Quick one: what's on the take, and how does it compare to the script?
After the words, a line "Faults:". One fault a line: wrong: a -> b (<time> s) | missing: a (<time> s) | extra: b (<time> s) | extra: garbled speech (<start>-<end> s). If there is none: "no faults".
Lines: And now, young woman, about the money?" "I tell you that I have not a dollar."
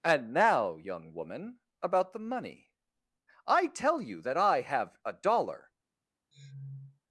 And now, young woman, about the money?" "I tell you that I have a dollar."
Faults:
missing: not (5.0 s)